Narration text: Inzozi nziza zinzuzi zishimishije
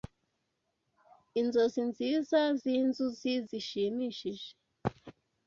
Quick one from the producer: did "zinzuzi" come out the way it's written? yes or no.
yes